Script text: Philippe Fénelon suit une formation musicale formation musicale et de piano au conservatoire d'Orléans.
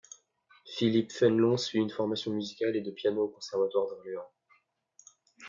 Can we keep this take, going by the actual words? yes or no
no